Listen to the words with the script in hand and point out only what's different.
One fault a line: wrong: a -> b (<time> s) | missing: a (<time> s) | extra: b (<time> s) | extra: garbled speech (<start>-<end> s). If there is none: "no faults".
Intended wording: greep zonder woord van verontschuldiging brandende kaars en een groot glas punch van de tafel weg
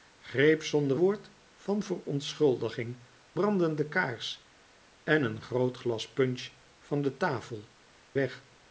no faults